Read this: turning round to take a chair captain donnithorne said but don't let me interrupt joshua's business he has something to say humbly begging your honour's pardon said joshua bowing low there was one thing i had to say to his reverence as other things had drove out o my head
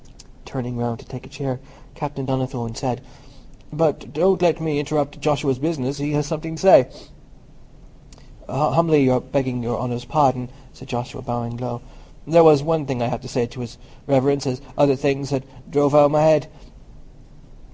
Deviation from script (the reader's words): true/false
false